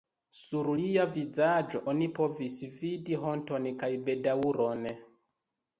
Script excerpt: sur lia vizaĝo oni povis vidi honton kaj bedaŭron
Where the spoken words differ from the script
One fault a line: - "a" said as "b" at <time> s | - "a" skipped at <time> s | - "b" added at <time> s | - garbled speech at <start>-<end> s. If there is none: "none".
none